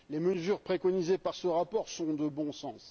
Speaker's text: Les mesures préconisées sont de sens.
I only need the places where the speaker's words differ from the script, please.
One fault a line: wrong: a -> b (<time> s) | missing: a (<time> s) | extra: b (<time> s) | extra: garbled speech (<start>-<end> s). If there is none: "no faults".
extra: par ce rapport (1.2 s)
extra: bon (2.3 s)